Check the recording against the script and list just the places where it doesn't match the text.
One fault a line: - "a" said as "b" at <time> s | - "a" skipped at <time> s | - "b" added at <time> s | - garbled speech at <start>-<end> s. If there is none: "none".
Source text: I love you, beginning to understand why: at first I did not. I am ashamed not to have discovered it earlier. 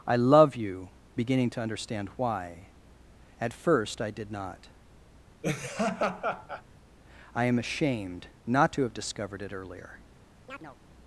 none